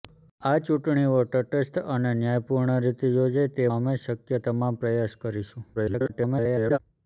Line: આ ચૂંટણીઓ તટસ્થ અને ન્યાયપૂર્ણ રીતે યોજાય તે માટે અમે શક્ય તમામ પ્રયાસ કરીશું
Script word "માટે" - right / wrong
wrong